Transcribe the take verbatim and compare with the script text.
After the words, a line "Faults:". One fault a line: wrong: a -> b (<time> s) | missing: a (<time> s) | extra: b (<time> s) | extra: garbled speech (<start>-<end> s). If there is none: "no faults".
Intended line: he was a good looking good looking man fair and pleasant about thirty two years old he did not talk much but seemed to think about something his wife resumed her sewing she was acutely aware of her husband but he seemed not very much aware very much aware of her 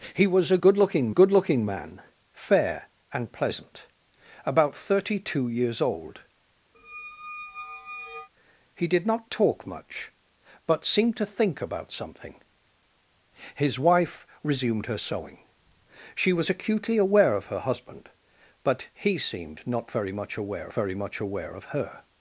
he was a good looking good looking man fair and pleasant about thirty two years old he did not talk much but seemed to think about something his wife resumed her sewing she was acutely aware of her husband but he seemed not very much aware very much aware of her
Faults:
no faults